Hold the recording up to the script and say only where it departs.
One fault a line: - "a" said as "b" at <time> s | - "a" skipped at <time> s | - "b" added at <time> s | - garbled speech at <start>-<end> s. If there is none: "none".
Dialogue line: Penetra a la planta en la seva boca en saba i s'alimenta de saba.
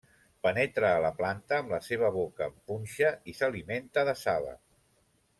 - "en" said as "amb" at 1.6 s
- "saba" said as "punxa" at 2.7 s